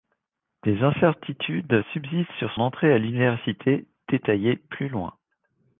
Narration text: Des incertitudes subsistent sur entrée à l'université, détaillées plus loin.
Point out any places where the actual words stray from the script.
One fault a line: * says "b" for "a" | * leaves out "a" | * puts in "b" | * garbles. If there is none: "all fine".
all fine